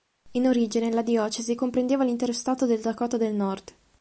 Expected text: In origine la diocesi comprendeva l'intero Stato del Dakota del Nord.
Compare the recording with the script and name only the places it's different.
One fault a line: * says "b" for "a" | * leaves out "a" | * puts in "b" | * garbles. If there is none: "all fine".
all fine